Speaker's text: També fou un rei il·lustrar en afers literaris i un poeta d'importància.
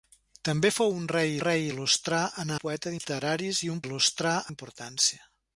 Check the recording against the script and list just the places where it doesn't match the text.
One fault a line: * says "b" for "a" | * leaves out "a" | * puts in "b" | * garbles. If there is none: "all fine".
* puts in "rei"
* says "poeta" for "afers"
* says "il·lustrar" for "poeta"